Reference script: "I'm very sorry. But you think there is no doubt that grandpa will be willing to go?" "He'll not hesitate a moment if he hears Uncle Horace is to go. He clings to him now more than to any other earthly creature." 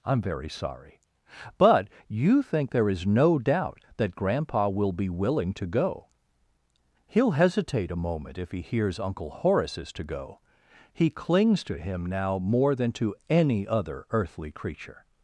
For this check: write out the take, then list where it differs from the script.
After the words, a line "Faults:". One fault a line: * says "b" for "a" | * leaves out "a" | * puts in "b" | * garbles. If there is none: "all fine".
"I'm very sorry. But you think there is no doubt that grandpa will be willing to go?" "He'll hesitate a moment if he hears Uncle Horace is to go. He clings to him now more than to any other earthly creature."
Faults:
* leaves out "not"